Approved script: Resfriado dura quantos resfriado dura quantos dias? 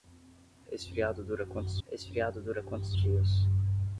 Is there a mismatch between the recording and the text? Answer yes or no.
no